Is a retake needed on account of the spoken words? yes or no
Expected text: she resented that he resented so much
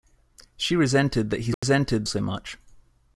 no